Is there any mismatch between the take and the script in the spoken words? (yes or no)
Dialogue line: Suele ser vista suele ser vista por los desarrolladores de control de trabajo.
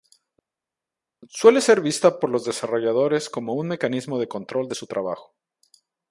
yes